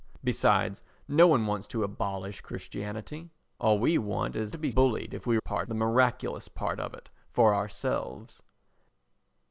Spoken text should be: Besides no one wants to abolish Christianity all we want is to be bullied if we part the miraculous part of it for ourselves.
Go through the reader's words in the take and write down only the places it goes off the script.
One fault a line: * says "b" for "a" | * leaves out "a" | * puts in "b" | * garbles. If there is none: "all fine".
all fine